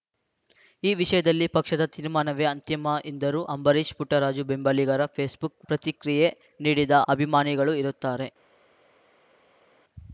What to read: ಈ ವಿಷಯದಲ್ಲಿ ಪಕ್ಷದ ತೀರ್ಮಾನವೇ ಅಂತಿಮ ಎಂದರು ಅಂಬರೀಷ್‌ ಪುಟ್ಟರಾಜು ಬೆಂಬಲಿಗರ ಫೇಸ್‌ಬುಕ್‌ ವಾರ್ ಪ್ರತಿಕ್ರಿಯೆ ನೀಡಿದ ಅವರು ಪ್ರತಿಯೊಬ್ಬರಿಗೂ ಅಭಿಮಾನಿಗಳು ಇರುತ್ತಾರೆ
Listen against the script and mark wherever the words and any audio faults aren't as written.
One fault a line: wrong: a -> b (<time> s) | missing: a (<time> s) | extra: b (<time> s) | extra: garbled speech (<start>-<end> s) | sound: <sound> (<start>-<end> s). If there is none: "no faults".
missing: ವಾರ್ (5.7 s)
missing: ಅವರು ಪ್ರತಿಯೊಬ್ಬರಿಗೂ (6.9 s)